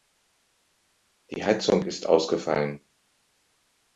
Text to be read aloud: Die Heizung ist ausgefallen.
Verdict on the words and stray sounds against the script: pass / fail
pass